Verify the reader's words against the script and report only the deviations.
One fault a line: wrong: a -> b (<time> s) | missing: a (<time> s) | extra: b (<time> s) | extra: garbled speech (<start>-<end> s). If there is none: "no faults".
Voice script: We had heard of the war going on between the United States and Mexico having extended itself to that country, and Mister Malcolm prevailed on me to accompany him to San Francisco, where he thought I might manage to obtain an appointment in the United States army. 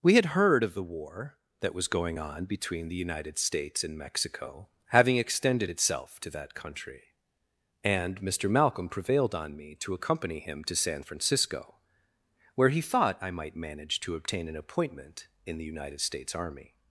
extra: that was (1.6 s)